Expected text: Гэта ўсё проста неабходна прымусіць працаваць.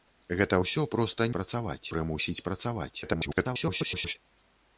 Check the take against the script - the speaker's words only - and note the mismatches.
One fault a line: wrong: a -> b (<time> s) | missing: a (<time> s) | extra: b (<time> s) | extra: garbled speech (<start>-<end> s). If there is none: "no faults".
wrong: неабходна -> працаваць (1.4 s)
extra: garbled speech (3.0-4.2 s)